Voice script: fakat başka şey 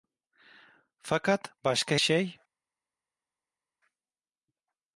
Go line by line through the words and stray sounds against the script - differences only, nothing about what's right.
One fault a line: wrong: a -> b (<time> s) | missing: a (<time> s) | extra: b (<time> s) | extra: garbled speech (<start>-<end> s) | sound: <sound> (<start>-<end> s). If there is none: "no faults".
no faults